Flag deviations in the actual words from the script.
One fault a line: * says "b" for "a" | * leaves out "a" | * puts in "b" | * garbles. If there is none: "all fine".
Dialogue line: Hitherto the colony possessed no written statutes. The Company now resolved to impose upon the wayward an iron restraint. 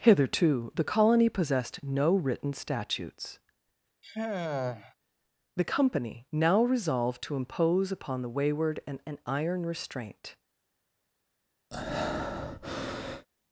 * puts in "an"